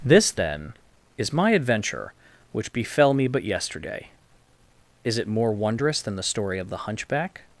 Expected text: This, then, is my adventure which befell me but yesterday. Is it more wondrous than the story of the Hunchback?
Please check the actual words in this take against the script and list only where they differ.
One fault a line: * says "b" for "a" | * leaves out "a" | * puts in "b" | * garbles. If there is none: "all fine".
all fine